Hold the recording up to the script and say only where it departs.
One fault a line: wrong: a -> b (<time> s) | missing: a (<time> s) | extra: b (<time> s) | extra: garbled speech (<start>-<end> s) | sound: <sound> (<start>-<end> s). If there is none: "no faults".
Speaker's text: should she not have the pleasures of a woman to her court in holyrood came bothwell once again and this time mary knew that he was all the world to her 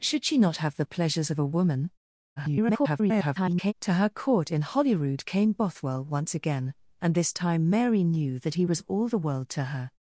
extra: garbled speech (2.4-3.7 s)